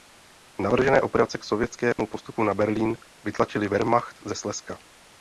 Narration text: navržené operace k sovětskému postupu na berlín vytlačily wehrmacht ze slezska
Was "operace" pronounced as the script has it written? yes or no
yes